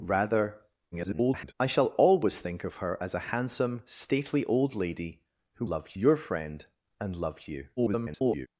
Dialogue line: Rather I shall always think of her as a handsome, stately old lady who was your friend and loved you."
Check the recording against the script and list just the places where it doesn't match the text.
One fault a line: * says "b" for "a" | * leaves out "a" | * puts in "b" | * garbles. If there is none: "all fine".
* garbles
* says "loved" for "was"
* garbles